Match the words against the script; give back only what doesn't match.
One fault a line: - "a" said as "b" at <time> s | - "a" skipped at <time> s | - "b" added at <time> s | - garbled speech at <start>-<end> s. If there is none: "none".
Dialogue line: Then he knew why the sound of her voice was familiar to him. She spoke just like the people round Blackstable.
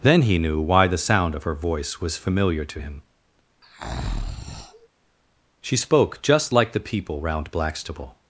none